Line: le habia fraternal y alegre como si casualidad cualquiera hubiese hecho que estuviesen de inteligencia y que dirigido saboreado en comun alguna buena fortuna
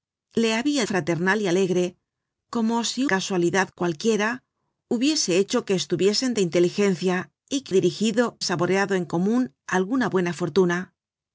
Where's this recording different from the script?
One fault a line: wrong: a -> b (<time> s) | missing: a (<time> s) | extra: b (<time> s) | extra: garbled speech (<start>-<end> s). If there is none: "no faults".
no faults